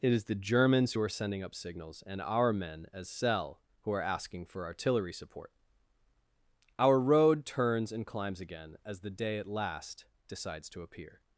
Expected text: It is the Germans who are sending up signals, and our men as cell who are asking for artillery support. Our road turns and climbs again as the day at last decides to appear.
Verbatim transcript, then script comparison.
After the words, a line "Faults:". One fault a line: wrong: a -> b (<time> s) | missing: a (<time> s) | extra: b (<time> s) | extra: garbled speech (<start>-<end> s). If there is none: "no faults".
It is the Germans who are sending up signals, and our men as cell who are asking for artillery support. Our road turns and climbs again as the day at last decides to appear.
Faults:
no faults